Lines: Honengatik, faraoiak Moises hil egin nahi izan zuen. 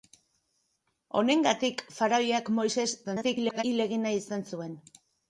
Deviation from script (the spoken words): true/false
true